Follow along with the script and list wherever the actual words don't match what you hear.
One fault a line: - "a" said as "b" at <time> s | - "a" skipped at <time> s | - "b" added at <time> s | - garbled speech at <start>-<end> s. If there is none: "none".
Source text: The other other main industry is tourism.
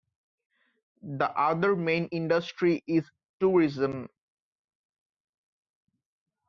- "other" skipped at 1.8 s